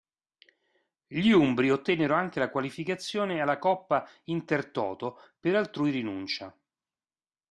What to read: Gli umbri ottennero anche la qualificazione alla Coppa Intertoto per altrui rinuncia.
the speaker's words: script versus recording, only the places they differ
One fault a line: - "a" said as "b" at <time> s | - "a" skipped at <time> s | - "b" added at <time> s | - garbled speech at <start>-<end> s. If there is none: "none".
none